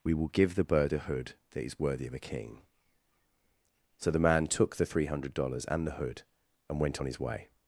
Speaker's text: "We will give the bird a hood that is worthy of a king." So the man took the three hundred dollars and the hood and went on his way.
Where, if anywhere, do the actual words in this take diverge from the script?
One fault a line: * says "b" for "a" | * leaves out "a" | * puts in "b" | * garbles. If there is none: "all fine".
all fine